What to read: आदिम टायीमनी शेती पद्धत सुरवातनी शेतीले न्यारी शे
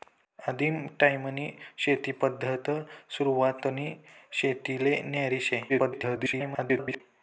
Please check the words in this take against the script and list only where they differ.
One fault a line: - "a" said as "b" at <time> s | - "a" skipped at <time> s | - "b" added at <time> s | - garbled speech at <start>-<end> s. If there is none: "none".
- garbled speech at 5.7-7.0 s